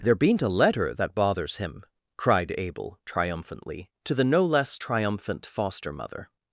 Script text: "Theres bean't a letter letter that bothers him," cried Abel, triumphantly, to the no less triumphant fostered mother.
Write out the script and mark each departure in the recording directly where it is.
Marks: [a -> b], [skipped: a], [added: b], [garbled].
["Theres -> There] bean't a letter [skipped: letter] that bothers him," cried Abel, triumphantly, to the no less triumphant [fostered -> foster] mother.